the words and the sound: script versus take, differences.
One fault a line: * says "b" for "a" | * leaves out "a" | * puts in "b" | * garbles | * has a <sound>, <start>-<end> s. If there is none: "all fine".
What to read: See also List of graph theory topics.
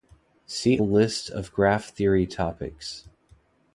* leaves out "also"